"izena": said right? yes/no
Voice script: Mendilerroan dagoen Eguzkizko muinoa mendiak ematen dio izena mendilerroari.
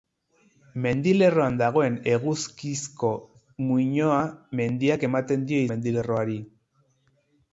no